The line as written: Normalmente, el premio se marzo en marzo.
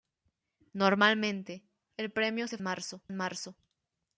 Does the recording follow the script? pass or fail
pass